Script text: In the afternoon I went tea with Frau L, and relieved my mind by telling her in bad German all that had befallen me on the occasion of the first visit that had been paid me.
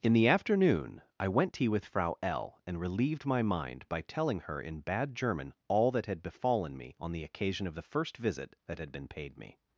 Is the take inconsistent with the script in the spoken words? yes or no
no